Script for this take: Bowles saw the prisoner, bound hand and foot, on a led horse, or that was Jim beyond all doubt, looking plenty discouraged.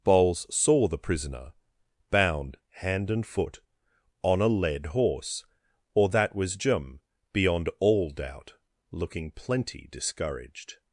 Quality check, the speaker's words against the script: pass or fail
pass